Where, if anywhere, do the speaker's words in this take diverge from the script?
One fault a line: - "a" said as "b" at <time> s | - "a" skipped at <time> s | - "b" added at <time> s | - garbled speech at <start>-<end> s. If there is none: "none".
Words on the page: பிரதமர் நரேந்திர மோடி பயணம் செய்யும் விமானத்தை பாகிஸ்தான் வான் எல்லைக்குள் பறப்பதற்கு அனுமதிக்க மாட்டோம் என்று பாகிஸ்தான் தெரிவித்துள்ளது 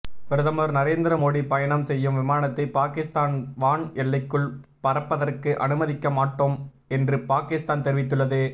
none